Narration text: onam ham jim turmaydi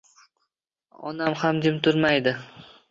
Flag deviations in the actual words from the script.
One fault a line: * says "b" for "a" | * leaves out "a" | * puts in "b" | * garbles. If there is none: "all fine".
all fine